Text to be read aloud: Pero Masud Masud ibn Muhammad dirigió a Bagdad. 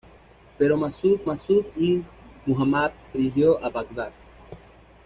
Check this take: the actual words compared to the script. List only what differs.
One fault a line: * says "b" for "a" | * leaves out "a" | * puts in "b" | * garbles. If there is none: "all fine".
all fine